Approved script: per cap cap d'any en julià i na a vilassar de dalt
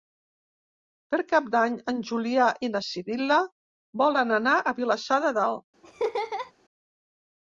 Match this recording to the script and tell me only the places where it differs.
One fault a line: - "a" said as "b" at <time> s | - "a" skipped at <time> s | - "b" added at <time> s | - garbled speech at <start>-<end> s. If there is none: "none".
- "cap" skipped at 1.5 s
- "sibil·la volen anar" added at 2.9 s